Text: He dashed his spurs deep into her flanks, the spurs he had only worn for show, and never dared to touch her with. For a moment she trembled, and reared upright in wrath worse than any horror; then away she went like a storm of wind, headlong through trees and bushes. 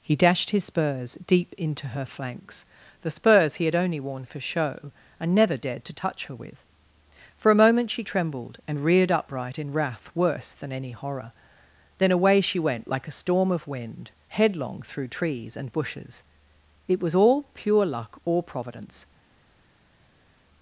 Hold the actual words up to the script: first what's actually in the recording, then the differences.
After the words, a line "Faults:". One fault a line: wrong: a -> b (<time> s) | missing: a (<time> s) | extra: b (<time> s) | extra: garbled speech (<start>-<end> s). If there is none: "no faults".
He dashed his spurs deep into her flanks, the spurs he had only worn for show, and never dared to touch her with. For a moment she trembled, and reared upright in wrath worse than any horror; then away she went like a storm of wind, headlong through trees and bushes. It was all pure luck or Providence
Faults:
extra: It was all pure luck or Providence (16.9 s)